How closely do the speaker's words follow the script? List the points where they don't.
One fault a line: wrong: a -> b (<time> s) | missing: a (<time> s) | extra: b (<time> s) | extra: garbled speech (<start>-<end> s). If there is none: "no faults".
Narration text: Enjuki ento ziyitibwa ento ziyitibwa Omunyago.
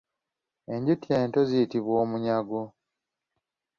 missing: ento ziyitibwa (1.9 s)